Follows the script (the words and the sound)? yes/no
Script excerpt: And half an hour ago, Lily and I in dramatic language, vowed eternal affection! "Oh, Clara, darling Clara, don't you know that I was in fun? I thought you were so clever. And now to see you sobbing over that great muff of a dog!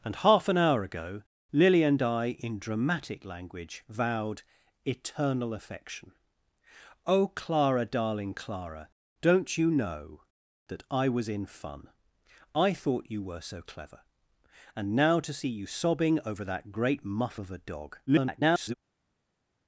no